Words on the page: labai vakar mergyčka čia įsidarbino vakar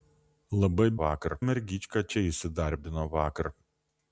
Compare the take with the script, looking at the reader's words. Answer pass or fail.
pass